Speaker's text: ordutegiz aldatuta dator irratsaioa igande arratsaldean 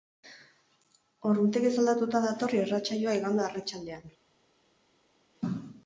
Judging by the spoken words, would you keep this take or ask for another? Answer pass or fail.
pass